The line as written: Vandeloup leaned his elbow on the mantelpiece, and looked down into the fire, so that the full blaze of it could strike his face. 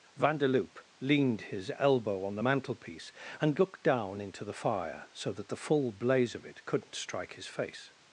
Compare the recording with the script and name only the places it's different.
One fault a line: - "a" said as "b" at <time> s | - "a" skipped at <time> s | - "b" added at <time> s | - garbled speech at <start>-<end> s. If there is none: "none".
- "could" said as "couldn't" at 6.6 s